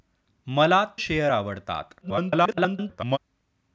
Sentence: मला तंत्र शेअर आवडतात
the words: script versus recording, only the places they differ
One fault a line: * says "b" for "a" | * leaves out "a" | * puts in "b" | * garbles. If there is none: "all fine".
* leaves out "तंत्र"
* garbles